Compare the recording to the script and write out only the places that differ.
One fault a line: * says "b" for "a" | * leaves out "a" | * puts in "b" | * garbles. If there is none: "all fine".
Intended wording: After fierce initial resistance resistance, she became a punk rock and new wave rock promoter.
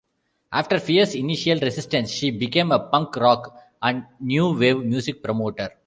* leaves out "resistance"
* says "music" for "rock"